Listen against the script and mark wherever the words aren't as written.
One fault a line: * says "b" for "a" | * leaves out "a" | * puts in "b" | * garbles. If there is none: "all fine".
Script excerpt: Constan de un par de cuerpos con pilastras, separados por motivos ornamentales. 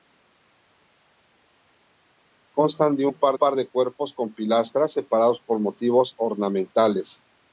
* puts in "par"